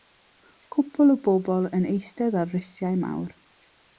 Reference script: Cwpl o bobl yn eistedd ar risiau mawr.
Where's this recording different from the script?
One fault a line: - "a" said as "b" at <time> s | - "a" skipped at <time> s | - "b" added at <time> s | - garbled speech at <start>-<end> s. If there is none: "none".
none